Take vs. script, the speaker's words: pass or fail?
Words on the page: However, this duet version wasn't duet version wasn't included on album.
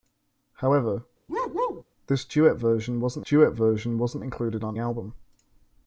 pass